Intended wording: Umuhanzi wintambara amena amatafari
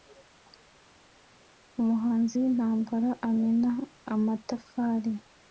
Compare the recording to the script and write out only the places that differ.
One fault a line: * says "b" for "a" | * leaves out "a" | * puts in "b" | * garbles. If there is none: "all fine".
all fine